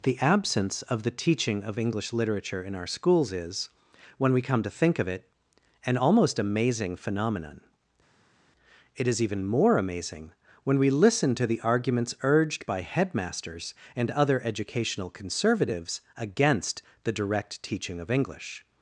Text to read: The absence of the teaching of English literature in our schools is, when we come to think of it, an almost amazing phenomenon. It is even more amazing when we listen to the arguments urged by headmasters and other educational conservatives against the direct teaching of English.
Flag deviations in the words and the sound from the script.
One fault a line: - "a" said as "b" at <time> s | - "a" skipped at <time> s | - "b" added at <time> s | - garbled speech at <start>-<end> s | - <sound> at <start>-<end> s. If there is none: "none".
none